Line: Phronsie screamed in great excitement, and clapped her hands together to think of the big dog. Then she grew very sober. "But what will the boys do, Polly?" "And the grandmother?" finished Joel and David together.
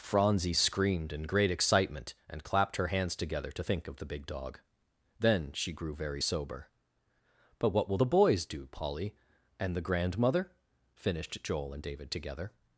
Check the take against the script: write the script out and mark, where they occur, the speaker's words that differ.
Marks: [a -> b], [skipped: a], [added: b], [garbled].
Phronsie screamed in great excitement, and clapped her hands together to think of the big dog. Then she grew very sober. "But what will the boys do, Polly?" "And the grandmother?" finished Joel and David together.